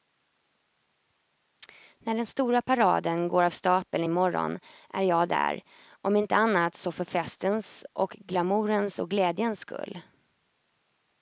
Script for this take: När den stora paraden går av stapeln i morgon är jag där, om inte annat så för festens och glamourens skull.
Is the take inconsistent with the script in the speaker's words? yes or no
yes